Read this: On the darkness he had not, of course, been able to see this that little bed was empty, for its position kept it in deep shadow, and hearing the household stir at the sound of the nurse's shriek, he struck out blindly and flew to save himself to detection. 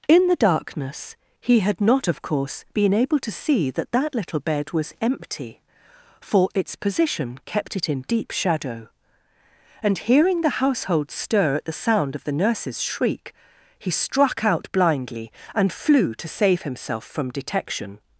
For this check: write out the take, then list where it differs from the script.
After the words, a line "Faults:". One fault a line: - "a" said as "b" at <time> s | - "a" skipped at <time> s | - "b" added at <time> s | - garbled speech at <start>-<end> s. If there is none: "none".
In the darkness he had not, of course, been able to see that that little bed was empty, for its position kept it in deep shadow, and hearing the household stir at the sound of the nurse's shriek, he struck out blindly and flew to save himself from detection.
Faults:
- "On" said as "In" at 0.1 s
- "this" said as "that" at 3.7 s
- "to" said as "from" at 17.0 s